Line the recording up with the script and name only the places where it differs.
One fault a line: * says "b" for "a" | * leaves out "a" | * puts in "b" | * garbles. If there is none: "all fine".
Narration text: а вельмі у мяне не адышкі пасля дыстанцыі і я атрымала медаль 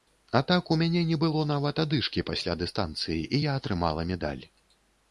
* says "так" for "вельмі"
* puts in "было нават"